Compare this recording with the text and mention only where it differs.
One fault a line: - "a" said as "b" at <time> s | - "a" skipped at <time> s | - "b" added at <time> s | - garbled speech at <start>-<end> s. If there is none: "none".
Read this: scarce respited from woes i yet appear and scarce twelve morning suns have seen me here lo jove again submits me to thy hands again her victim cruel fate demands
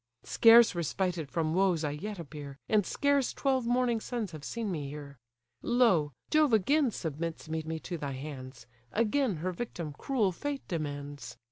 - "me" added at 7.6 s